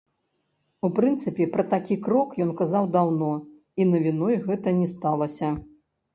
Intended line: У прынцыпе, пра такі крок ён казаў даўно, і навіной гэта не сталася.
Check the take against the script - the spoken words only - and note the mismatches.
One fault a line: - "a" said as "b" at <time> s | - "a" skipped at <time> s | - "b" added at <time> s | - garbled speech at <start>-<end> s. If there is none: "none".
none